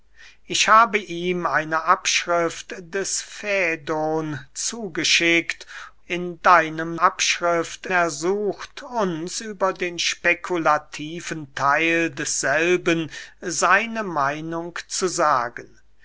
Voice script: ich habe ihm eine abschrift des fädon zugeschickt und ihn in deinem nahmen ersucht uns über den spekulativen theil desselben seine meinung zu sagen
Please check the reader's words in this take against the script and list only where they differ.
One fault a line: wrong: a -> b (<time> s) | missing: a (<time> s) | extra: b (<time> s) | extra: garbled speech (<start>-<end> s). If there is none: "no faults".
missing: und ihn (5.7 s)
wrong: nahmen -> abschrift (7.0 s)